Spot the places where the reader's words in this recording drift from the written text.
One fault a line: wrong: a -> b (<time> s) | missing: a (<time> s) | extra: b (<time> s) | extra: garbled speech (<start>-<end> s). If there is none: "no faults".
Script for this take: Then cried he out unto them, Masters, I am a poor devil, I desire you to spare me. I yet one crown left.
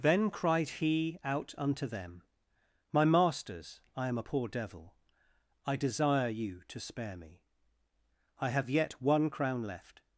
extra: My (2.9 s)
extra: have (8.5 s)